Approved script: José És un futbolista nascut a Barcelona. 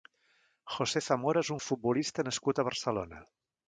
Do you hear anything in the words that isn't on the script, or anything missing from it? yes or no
yes